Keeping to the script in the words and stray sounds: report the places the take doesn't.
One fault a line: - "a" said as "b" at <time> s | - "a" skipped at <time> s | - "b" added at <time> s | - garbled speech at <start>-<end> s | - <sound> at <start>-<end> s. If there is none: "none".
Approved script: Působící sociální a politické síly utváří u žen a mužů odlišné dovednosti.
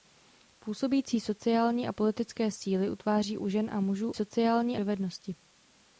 - "odlišné" said as "sociální" at 4.1 s